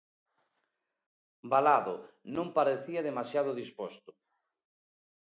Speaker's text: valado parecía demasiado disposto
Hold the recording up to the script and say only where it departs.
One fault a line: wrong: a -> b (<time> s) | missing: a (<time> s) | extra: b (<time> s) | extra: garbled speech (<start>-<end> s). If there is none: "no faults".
extra: non (2.4 s)